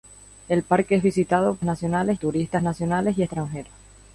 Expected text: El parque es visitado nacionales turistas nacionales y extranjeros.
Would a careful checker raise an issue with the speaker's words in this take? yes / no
no